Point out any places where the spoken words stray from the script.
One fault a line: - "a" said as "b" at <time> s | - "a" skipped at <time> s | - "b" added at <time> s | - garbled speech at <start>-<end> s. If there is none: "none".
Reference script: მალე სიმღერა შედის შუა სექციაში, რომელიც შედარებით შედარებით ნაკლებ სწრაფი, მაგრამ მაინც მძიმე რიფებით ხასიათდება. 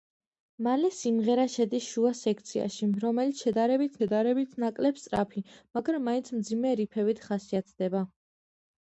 none